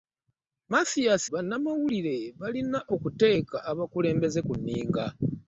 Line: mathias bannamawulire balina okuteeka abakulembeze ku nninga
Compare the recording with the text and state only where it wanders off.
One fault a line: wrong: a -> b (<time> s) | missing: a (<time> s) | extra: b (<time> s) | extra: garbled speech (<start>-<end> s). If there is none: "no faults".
no faults